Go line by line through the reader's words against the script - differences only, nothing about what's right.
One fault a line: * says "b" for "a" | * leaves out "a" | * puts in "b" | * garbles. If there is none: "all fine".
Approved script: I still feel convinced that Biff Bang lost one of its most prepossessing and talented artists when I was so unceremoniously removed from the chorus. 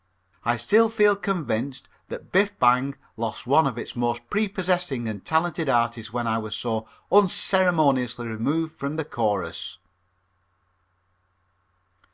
all fine